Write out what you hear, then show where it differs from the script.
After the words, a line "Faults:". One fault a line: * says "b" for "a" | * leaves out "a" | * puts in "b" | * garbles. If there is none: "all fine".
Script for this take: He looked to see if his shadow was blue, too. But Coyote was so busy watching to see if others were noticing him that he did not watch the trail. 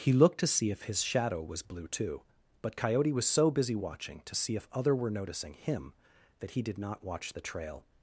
He looked to see if his shadow was blue, too. But Coyote was so busy watching to see if other were noticing him that he did not watch the trail.
Faults:
* says "other" for "others"